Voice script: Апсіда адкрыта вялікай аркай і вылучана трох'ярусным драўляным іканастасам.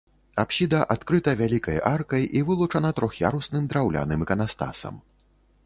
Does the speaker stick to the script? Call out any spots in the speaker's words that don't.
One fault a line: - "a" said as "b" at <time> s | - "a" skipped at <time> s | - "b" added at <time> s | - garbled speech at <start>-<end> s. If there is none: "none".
none